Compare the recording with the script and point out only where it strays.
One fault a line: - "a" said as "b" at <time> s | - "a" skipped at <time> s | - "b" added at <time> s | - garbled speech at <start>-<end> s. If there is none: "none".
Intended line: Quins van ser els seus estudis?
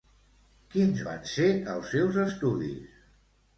none